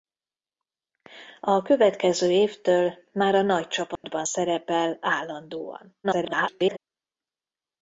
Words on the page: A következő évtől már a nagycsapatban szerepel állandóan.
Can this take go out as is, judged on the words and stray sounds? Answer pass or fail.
fail